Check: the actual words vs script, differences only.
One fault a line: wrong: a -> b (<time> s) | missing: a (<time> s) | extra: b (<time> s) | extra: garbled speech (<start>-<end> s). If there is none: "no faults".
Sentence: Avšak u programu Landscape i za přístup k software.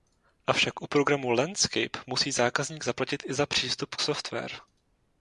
extra: musí zákazník zaplatit (2.1 s)